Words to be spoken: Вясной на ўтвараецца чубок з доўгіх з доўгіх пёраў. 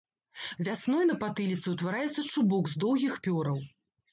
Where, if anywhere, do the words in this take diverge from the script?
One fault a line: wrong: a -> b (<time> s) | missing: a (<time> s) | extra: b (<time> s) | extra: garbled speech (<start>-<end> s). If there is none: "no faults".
extra: патыліцы (1.2 s)
missing: з доўгіх (3.1 s)